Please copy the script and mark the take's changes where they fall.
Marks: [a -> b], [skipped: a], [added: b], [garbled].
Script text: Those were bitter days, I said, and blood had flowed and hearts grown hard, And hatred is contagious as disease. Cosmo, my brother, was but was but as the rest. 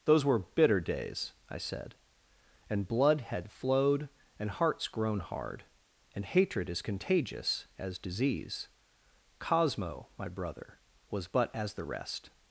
Those were bitter days, I said, and blood had flowed and hearts grown hard, And hatred is contagious as disease. Cosmo, my brother, was but [skipped: was but] as the rest.